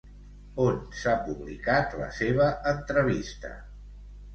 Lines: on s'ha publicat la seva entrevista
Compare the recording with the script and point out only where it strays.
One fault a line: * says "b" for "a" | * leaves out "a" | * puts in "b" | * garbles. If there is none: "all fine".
all fine